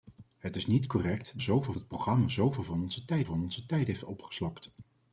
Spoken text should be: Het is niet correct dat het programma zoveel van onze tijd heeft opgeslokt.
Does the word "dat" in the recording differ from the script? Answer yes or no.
yes